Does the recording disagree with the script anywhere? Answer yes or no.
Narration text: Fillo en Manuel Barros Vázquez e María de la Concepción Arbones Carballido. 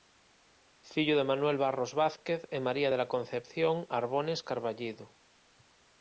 yes